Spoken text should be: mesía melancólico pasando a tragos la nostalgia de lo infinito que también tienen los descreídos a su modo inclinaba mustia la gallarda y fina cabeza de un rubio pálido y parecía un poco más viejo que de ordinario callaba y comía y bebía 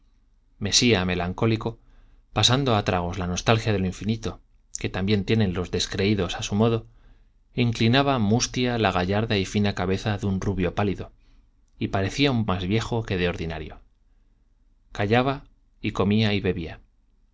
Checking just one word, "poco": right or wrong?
wrong